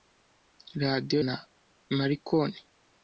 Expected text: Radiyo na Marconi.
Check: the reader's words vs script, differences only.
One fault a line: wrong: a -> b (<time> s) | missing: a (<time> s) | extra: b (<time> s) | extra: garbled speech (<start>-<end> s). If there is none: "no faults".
no faults